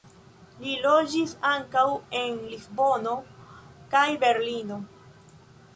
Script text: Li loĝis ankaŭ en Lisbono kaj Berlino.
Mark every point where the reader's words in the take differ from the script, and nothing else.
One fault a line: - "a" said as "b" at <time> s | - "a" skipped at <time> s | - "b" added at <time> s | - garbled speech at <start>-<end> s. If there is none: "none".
none